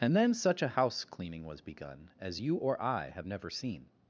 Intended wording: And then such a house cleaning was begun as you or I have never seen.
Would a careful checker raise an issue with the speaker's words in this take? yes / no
no